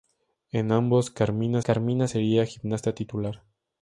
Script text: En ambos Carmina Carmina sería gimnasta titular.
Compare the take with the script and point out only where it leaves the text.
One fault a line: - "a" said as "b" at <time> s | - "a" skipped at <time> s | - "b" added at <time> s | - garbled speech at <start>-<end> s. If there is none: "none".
none